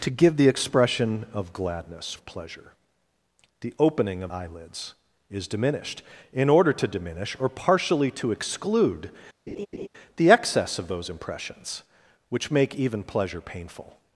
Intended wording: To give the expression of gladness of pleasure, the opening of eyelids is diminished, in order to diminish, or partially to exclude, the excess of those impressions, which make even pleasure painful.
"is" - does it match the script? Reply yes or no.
yes